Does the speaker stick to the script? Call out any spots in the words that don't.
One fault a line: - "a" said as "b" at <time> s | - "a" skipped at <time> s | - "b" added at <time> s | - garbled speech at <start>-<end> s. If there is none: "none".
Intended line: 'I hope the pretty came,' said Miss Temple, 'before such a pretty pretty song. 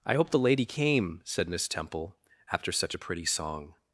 - "pretty" said as "lady" at 0.4 s
- "before" said as "after" at 2.5 s
- "pretty" skipped at 3.2 s